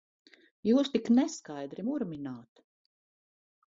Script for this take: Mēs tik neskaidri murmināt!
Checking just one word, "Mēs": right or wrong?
wrong